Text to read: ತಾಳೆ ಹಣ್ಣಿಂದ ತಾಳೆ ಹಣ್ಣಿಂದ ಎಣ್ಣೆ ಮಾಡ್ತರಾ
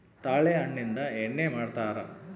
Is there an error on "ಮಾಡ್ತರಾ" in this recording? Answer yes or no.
no